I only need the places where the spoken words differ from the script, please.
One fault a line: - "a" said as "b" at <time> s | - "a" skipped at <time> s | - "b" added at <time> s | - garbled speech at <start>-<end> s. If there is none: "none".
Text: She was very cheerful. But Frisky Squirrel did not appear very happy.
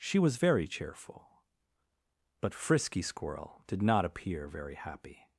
none